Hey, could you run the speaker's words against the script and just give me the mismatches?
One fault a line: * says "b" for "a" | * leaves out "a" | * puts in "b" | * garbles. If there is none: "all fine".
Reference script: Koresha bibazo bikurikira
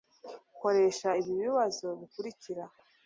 * puts in "ibi"